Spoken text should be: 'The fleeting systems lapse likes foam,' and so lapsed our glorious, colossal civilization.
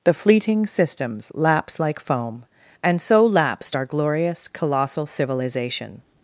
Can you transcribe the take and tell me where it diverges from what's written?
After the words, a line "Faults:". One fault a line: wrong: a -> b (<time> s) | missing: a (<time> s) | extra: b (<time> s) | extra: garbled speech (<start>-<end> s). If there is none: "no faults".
'The fleeting systems lapse like foam,' and so lapsed our glorious, colossal civilization.
Faults:
wrong: likes -> like (1.8 s)